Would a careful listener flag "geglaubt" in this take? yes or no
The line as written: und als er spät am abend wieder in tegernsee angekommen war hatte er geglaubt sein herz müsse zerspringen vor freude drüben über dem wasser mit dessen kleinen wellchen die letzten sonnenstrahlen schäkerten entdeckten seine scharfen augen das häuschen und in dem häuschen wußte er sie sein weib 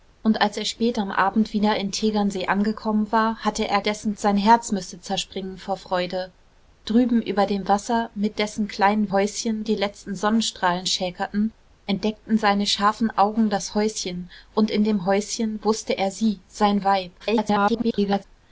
yes